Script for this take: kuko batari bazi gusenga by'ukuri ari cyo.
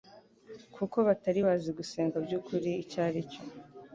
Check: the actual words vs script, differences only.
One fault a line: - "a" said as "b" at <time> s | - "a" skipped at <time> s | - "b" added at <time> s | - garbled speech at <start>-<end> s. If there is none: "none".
- "icyo" added at 2.8 s